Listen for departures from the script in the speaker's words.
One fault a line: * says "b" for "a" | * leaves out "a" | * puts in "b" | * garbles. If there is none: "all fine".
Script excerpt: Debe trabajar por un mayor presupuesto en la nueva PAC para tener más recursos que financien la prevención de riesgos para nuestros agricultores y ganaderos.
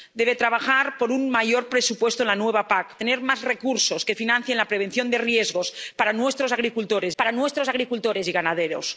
* leaves out "para"
* puts in "para nuestros agricultores"